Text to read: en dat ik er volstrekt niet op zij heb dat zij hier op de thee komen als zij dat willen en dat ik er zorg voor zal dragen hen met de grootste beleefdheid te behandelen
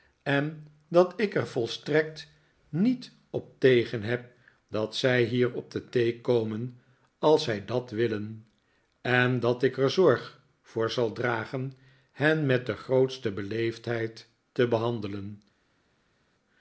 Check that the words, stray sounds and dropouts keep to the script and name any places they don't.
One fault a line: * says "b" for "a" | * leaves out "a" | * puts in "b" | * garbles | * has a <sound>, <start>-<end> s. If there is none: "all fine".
* says "tegen" for "zij"